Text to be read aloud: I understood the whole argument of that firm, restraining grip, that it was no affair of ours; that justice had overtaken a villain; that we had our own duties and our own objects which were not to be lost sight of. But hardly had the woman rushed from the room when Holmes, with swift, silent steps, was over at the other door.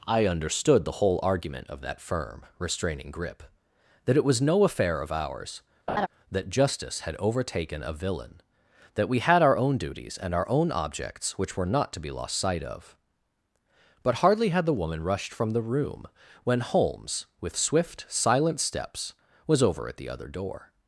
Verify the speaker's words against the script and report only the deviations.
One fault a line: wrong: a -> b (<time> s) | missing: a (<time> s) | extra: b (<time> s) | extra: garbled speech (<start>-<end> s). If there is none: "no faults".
no faults